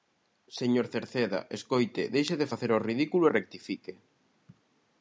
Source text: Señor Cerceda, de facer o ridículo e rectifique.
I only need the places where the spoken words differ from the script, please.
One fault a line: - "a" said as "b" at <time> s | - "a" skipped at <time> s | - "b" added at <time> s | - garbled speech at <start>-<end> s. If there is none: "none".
- "escoite deixe" added at 1.6 s